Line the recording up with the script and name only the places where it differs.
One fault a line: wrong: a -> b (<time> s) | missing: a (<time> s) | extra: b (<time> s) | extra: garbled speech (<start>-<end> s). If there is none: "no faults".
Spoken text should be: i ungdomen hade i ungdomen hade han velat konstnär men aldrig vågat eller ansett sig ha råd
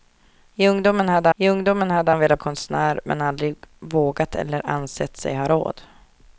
no faults